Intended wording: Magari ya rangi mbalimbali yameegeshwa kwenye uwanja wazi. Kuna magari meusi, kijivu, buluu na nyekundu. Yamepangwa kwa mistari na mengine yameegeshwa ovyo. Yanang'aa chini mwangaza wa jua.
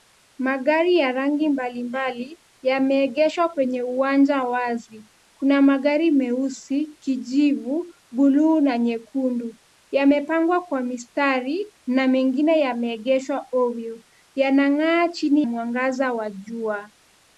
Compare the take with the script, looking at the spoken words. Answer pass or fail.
pass